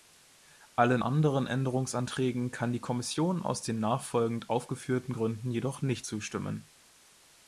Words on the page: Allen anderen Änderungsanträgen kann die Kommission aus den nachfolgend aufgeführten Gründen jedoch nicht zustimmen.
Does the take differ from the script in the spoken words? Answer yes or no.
no